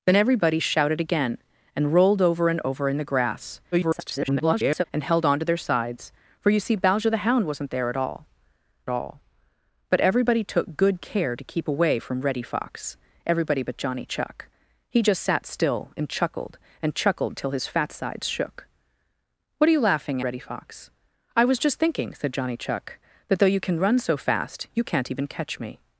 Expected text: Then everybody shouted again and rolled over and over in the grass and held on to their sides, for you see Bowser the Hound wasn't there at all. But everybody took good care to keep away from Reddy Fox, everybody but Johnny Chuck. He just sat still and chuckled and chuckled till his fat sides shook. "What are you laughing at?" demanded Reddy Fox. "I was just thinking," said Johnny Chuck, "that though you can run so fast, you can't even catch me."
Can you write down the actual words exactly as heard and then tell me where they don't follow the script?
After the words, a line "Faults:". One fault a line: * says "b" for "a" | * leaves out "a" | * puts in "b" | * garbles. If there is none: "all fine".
Then everybody shouted again and rolled over and over in the grass [garbled] and held on to their sides, for you see Bowser the Hound wasn't there at all all. But everybody took good care to keep away from Reddy Fox, everybody but Johnny Chuck. He just sat still and chuckled and chuckled till his fat sides shook. "What are you laughing Reddy Fox. "I was just thinking," said Johnny Chuck, "that though you can run so fast, you can't even catch me."
Faults:
* garbles
* puts in "all"
* leaves out "at demanded"